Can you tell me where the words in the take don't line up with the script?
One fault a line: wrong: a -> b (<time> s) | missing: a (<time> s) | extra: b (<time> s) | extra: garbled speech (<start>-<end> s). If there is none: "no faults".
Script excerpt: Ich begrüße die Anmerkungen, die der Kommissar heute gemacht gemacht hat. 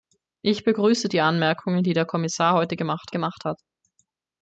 no faults